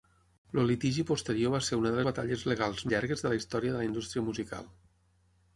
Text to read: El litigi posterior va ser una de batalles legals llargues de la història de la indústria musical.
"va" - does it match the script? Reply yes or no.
yes